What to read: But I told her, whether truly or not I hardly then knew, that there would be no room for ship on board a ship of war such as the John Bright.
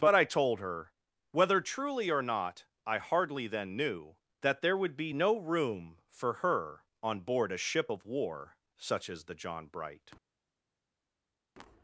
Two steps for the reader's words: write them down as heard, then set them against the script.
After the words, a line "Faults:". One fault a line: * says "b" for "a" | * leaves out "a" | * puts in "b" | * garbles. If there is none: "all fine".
But I told her, whether truly or not I hardly then knew, that there would be no room for her on board a ship of war such as the John Bright.
Faults:
* says "her" for "ship"